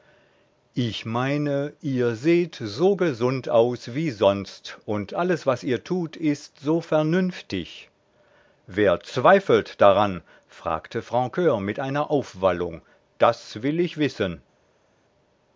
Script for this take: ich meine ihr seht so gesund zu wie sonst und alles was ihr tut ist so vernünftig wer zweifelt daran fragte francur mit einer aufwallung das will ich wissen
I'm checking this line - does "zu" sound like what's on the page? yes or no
no